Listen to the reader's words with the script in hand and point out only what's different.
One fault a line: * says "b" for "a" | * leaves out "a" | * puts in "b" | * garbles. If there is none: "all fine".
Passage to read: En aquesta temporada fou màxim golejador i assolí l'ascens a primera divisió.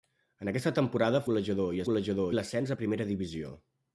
* leaves out "fou màxim"
* says "golejador" for "assolí"